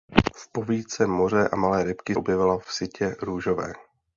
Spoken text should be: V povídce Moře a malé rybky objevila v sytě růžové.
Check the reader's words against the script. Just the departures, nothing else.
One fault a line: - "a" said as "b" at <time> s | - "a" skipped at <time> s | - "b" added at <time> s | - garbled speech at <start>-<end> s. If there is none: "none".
none